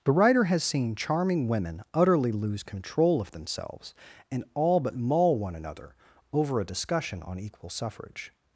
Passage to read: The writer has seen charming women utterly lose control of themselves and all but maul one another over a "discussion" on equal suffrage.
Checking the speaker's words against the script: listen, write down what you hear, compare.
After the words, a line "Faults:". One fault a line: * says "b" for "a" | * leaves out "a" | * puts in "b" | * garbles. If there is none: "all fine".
The writer has seen charming women utterly lose control of themselves and all but maul one another over a "discussion" on equal suffrage.
Faults:
all fine